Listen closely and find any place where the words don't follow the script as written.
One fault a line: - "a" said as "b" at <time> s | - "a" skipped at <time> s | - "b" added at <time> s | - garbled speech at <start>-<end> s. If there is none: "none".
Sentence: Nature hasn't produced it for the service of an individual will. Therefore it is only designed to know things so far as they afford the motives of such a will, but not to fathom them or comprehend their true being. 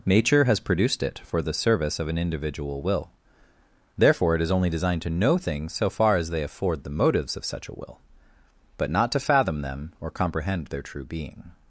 - "hasn't" said as "has" at 0.5 s